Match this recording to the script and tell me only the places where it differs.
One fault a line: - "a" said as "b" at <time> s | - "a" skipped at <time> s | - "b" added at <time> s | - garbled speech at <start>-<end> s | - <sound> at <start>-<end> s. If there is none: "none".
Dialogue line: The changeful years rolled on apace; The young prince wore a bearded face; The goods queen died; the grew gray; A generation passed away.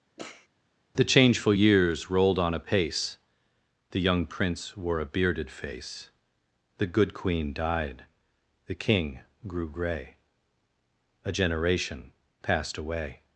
- sniff at 0.2-0.5 s
- "goods" said as "good" at 6.9 s
- "king" added at 8.8 s